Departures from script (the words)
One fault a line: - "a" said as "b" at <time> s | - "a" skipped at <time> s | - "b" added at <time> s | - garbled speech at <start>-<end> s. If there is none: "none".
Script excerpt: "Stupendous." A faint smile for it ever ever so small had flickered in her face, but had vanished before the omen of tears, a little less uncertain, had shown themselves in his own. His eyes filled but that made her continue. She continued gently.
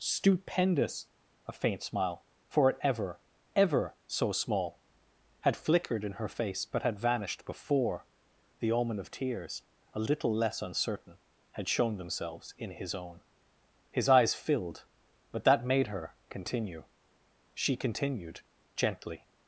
none